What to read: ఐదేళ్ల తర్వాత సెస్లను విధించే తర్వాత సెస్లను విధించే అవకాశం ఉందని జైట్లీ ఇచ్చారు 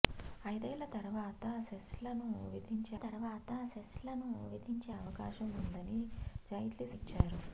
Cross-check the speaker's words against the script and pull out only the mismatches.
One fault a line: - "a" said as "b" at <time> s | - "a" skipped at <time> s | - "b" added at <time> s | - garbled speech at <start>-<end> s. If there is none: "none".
none